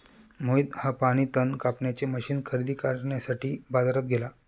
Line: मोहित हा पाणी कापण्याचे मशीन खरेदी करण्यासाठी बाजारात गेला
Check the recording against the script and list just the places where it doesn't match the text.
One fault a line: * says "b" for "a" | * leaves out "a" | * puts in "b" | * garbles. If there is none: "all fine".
* puts in "तण"